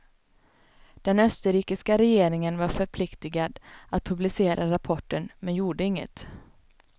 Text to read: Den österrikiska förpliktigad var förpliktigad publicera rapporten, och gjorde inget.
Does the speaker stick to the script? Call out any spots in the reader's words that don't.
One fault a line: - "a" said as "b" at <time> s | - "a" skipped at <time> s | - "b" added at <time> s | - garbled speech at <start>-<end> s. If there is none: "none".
- "förpliktigad" said as "regeringen" at 2.0 s
- "att" added at 3.9 s
- "och" said as "men" at 5.4 s